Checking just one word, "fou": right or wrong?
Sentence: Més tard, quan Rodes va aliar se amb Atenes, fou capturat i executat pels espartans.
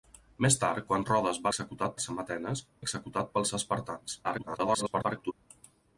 wrong